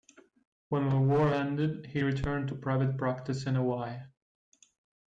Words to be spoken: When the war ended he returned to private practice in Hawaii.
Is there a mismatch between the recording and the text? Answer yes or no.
no